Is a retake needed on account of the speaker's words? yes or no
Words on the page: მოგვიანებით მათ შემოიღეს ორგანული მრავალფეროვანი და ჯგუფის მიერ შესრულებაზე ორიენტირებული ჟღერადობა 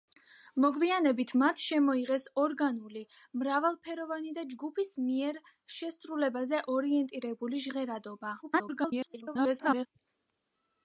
yes